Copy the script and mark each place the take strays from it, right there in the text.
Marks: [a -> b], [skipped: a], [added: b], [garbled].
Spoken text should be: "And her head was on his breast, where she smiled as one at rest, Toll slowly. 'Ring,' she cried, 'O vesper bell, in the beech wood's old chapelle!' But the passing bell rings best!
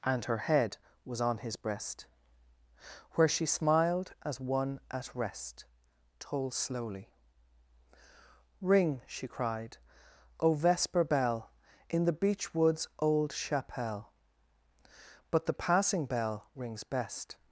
"And her head was on his breast, where she smiled as one at rest, Toll slowly. 'Ring,' she cried, 'O vesper bell, in the beech wood's old chapelle!' But the passing bell rings best!